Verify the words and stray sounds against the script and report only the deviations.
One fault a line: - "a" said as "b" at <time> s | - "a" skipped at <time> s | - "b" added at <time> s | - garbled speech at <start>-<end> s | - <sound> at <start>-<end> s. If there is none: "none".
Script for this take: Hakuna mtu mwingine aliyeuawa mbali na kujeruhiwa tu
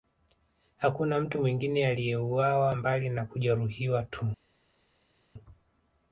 none